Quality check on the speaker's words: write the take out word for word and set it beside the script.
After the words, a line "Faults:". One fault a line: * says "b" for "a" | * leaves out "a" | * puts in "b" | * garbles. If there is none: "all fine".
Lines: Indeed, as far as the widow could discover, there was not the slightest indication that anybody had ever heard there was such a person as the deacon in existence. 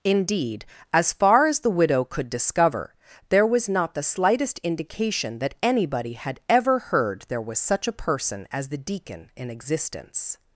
Indeed, as far as the widow could discover, there was not the slightest indication that anybody had ever heard there was such a person as the deacon in existence.
Faults:
all fine